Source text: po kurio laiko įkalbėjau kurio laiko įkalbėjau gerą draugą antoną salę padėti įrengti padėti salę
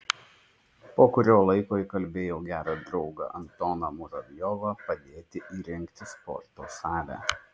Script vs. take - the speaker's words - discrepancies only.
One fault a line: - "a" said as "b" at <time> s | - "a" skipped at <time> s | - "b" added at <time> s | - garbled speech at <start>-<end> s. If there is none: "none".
- "kurio laiko įkalbėjau" skipped at 2.4 s
- "salę" said as "muravjovą" at 4.0 s
- "padėti" said as "sporto" at 6.1 s